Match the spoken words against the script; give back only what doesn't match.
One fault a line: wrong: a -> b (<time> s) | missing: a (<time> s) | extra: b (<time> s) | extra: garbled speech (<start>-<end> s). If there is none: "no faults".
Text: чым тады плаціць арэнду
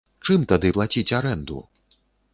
no faults